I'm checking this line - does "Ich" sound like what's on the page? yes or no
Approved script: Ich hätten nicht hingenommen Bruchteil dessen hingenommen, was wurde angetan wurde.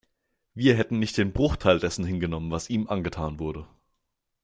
no